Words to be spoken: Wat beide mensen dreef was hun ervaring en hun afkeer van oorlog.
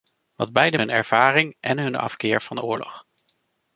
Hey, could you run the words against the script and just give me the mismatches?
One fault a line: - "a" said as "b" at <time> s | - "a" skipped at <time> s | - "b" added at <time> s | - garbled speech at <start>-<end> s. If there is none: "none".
- "mensen dreef was" skipped at 0.8 s